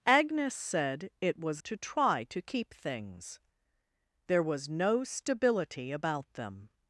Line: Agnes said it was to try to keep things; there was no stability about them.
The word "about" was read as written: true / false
true